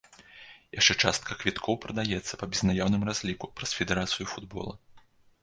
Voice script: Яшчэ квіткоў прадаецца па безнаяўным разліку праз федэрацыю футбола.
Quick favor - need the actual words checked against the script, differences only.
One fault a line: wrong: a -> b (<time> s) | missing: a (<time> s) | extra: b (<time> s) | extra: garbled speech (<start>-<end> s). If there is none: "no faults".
extra: частка (1.1 s)